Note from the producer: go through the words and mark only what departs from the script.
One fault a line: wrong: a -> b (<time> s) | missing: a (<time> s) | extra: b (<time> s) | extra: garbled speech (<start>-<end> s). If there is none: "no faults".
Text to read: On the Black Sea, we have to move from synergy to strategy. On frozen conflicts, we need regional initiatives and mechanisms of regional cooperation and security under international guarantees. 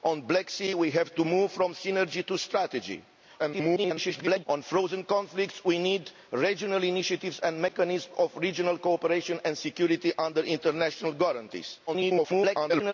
extra: garbled speech (3.4-4.5 s)
extra: garbled speech (11.9-12.9 s)